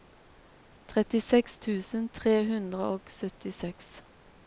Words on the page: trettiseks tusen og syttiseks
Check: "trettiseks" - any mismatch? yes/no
no